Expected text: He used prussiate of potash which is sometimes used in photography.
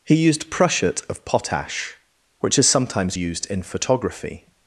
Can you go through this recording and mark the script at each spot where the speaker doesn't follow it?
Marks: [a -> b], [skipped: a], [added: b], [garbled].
He used prussiate of potash which is sometimes used in photography.